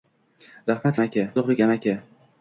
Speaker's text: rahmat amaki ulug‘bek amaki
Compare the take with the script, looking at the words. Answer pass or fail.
pass